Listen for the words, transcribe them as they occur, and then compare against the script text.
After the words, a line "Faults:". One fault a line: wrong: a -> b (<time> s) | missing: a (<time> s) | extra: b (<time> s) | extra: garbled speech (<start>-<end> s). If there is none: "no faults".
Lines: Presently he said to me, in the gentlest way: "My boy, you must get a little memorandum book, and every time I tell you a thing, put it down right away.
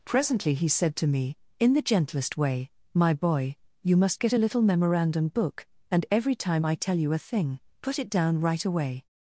Presently he said to me, in the gentlest way: "My boy, you must get a little memorandum book, and every time I tell you a thing, put it down right away.
Faults:
no faults